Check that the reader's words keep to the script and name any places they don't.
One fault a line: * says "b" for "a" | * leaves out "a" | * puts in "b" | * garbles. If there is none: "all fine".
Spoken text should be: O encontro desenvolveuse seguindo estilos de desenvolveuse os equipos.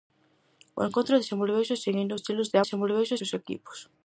all fine